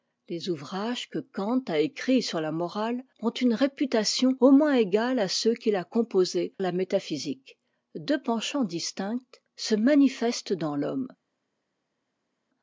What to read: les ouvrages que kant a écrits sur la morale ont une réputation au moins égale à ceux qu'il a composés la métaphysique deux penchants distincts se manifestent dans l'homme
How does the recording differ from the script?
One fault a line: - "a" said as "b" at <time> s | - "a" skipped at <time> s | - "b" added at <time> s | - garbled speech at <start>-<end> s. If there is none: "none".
none